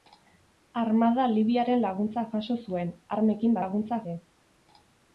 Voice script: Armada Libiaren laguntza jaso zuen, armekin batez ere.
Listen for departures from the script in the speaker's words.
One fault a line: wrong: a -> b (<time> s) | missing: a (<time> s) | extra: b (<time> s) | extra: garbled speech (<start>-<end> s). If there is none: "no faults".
wrong: batez -> laguntza (3.6 s)